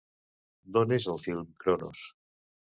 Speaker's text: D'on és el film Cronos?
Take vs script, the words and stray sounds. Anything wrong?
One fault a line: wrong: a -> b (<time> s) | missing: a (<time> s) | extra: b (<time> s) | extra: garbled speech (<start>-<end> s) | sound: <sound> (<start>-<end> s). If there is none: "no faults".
no faults